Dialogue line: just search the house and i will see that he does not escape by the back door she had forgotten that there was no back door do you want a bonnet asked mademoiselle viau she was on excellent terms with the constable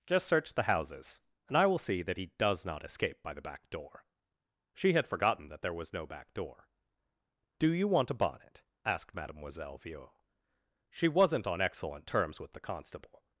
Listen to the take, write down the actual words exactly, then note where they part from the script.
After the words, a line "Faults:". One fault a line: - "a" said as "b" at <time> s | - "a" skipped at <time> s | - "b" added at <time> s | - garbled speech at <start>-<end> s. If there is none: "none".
just search the houses and i will see that he does not escape by the back door she had forgotten that there was no back door do you want a bonnet asked mademoiselle viau she wasn't on excellent terms with the constable
Faults:
- "house" said as "houses" at 0.6 s
- "was" said as "wasn't" at 11.1 s